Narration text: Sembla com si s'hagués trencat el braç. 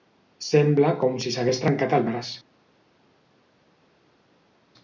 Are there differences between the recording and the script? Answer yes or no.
no